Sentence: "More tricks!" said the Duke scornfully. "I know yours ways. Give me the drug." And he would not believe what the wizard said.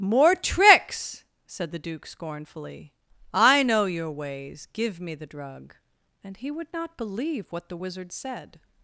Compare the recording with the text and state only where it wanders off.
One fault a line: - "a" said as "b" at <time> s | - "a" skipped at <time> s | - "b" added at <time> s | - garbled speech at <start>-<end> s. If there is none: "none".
- "yours" said as "your" at 3.9 s